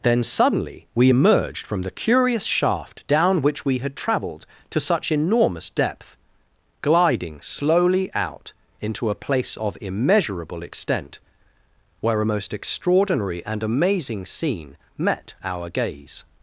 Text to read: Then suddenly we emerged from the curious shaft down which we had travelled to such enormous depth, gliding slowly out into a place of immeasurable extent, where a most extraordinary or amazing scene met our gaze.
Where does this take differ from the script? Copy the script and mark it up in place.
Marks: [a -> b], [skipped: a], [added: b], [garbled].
Then suddenly we emerged from the curious shaft down which we had travelled to such enormous depth, gliding slowly out into a place of immeasurable extent, where a most extraordinary [or -> and] amazing scene met our gaze.